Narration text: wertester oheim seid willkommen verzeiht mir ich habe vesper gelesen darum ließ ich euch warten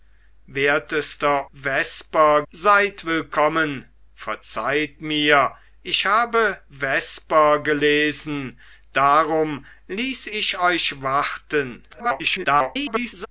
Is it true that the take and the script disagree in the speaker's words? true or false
true